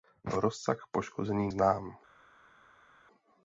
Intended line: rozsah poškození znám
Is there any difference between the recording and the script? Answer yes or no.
no